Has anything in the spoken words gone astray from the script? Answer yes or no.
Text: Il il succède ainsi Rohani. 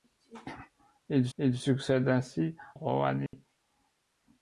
no